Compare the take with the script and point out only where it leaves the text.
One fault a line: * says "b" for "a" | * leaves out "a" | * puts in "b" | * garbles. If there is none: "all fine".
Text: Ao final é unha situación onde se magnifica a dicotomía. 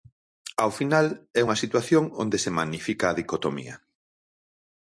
all fine